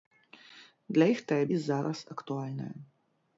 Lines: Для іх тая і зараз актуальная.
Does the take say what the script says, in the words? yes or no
yes